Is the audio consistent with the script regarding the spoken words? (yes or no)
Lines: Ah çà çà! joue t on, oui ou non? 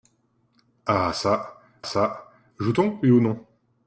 yes